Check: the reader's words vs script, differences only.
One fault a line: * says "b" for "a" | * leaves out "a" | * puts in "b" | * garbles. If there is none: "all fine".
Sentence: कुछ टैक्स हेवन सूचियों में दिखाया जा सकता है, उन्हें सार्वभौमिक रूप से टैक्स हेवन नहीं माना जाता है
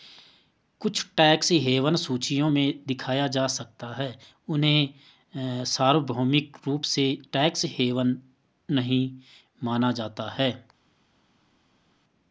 all fine